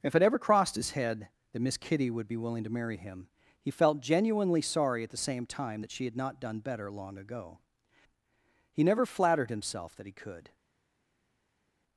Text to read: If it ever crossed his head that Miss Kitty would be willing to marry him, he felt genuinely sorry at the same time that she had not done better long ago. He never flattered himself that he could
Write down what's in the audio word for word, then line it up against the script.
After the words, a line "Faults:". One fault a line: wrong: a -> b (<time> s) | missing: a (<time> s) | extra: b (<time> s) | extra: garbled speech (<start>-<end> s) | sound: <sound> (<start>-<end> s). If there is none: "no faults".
If it ever crossed his head that Miss Kitty would be willing to marry him, he felt genuinely sorry at the same time that she had not done better long ago. He never flattered himself that he could
Faults:
no faults